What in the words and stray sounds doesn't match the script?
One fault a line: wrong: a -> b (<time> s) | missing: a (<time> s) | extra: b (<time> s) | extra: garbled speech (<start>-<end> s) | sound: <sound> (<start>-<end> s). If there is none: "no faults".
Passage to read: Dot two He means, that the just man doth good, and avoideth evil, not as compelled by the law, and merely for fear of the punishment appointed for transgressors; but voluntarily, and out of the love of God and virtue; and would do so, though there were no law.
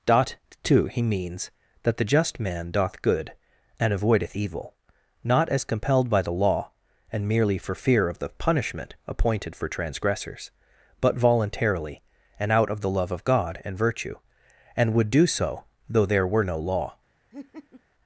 sound: laugh (17.3-17.8 s)